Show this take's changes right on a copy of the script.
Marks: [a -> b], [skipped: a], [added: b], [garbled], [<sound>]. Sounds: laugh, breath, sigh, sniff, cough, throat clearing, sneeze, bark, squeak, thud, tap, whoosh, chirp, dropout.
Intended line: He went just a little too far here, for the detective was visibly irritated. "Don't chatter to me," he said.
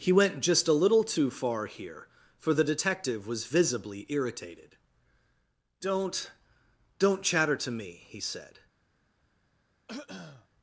He went just a little too far here, for the detective was visibly irritated. "Don't [added: Don't] chatter to me," he said. [throat clearing]